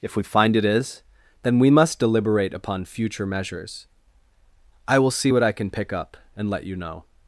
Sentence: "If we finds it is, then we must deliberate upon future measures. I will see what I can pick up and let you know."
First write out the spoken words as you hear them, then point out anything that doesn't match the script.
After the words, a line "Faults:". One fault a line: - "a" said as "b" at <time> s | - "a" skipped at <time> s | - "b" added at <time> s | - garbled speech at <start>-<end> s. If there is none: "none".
"If we find it is, then we must deliberate upon future measures. I will see what I can pick up and let you know."
Faults:
- "finds" said as "find" at 0.2 s